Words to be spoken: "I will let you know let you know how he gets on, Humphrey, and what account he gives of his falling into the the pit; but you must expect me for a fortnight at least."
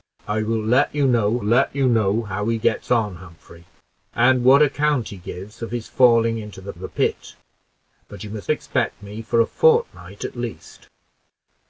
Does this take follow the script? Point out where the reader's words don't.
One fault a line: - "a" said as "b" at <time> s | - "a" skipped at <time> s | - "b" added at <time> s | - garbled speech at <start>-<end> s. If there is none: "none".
none